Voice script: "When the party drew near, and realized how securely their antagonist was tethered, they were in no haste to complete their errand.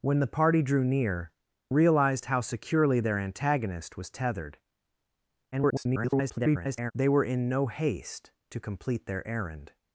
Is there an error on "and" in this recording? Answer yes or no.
yes